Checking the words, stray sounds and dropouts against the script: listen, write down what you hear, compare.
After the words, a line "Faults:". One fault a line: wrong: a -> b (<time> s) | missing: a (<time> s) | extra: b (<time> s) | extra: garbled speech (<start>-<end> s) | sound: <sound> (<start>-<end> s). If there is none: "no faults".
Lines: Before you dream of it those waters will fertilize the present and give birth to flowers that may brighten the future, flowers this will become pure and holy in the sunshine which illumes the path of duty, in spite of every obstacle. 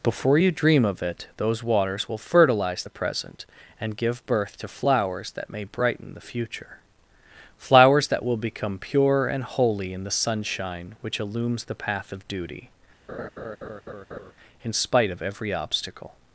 Before you dream of it those waters will fertilize the present and give birth to flowers that may brighten the future, flowers that will become pure and holy in the sunshine which illumes the path of duty, in spite of every obstacle.
Faults:
wrong: this -> that (8.1 s)
sound: laugh (13.1-14.3 s)